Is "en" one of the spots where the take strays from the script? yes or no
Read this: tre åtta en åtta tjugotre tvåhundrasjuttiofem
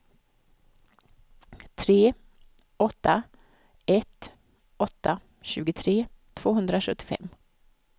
yes